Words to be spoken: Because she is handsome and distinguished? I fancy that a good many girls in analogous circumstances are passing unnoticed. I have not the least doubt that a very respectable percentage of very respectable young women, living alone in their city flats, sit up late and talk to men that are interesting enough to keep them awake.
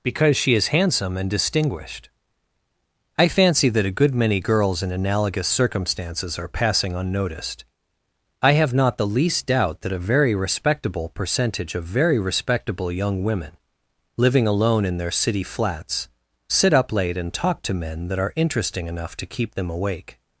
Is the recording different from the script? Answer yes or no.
no